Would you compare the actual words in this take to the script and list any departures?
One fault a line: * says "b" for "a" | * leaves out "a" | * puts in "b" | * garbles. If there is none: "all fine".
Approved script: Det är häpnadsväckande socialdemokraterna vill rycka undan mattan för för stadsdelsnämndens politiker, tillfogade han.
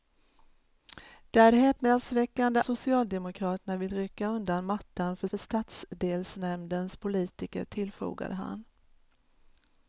all fine